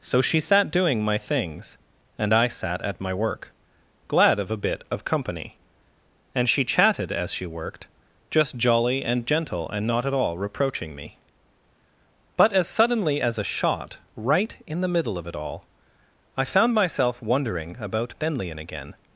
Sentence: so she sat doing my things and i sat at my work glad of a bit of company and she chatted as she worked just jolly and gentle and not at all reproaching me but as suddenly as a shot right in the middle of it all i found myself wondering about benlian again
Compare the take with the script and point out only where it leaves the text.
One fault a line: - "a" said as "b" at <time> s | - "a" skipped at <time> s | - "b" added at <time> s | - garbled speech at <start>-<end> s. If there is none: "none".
none